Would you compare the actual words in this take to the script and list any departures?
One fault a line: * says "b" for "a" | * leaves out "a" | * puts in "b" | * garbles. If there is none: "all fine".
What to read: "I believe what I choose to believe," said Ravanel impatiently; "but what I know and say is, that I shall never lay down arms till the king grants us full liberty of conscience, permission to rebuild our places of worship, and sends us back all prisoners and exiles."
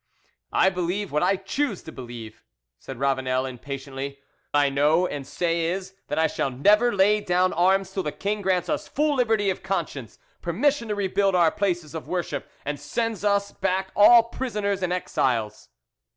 * leaves out "but what"